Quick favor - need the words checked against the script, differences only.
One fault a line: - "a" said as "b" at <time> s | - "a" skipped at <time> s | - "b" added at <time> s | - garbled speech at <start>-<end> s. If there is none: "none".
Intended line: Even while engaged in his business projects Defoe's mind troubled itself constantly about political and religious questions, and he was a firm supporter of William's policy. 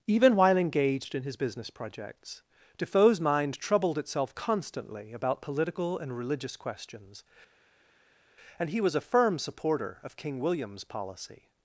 - "King" added at 10.2 s